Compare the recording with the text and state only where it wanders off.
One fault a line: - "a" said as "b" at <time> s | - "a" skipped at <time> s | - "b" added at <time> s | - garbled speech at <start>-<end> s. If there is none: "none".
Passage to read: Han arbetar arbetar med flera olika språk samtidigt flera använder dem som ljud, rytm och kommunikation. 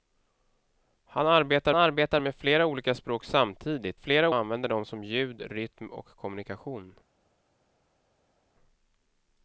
none